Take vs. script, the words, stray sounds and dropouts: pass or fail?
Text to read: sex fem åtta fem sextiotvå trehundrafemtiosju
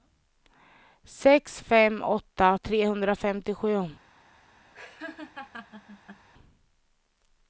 fail